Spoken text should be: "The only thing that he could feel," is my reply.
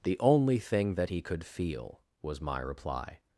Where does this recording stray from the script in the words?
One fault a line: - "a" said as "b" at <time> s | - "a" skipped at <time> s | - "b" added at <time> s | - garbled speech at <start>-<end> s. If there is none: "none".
- "is" said as "was" at 2.2 s